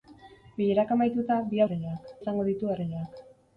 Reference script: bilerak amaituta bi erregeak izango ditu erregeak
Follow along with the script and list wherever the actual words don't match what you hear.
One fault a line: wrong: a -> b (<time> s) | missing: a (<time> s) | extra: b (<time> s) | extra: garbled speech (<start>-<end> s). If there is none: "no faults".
no faults